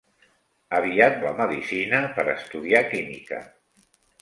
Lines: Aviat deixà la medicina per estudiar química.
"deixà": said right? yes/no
no